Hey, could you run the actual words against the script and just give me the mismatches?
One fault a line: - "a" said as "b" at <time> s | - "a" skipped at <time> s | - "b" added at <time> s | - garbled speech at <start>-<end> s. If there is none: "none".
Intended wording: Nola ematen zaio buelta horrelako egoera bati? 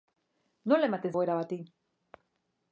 - "zaio buelta horrelako" skipped at 1.1 s